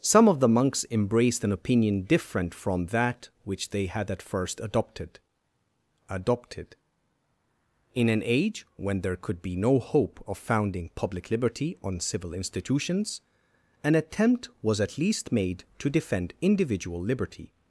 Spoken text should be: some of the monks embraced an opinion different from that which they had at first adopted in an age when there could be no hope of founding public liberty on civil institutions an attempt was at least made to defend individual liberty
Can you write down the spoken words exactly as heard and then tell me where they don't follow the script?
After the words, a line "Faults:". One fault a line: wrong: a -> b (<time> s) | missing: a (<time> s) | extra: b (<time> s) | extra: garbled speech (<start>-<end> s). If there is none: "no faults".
some of the monks embraced an opinion different from that which they had at first adopted adopted in an age when there could be no hope of founding public liberty on civil institutions an attempt was at least made to defend individual liberty
Faults:
extra: adopted (6.1 s)